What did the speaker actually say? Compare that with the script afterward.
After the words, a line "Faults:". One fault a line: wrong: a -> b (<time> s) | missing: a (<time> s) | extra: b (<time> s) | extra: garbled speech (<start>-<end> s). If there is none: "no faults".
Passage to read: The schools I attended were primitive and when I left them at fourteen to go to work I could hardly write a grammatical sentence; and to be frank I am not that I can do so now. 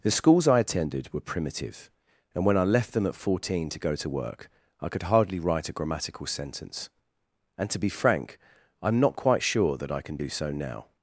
The schools I attended were primitive and when I left them at fourteen to go to work I could hardly write a grammatical sentence; and to be frank I am not quite sure that I can do so now.
Faults:
extra: quite sure (9.2 s)